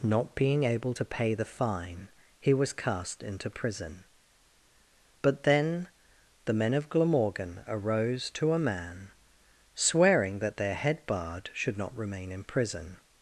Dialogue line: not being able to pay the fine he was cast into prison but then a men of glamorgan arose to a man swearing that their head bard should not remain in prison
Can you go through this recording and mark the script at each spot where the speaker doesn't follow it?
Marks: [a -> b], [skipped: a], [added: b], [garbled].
not being able to pay the fine he was cast into prison but then [a -> the] men of glamorgan arose to a man swearing that their head bard should not remain in prison